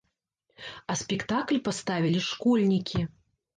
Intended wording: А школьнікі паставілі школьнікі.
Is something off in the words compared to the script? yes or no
yes